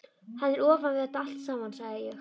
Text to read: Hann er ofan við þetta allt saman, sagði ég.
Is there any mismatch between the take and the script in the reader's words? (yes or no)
no